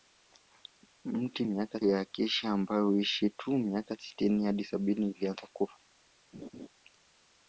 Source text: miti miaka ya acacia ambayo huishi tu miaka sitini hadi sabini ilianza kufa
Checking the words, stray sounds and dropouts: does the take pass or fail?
fail